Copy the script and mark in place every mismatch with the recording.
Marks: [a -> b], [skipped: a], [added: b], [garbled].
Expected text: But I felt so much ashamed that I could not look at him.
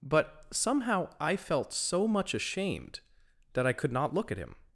But [added: somehow] I felt so much ashamed that I could not look at him.